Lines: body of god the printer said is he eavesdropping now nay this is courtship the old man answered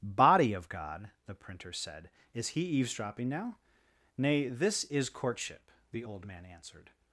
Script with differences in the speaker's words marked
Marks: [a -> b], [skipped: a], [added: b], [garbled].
body of god the printer said is he eavesdropping now nay this is courtship the old man answered